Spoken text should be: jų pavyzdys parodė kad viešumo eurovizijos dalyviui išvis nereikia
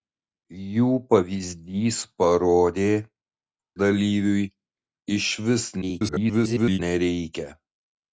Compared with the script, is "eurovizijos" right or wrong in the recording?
wrong